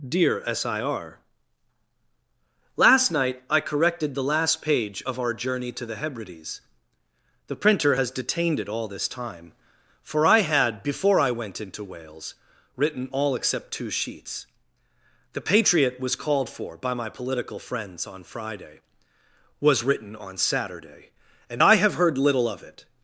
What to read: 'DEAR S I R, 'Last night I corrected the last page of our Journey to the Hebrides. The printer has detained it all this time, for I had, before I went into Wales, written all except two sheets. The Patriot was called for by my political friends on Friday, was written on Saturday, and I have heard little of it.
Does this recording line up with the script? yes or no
yes